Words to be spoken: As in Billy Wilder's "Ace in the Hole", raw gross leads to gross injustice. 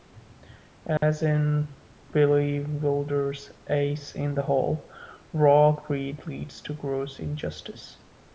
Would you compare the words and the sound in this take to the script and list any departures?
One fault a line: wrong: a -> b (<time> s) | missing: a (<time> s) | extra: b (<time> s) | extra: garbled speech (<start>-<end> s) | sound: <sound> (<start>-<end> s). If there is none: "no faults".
sound: dropout (1.0-1.0 s)
wrong: gross -> greed (5.7 s)